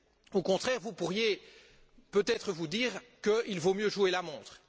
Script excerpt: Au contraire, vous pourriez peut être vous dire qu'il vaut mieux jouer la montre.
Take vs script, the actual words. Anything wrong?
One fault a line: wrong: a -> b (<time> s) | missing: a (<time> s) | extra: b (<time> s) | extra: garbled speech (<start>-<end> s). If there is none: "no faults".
no faults